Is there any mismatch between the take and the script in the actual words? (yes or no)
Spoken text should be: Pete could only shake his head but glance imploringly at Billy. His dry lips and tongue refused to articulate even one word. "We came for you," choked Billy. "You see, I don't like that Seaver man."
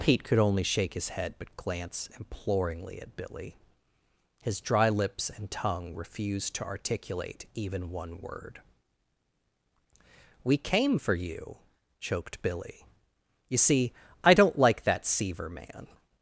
no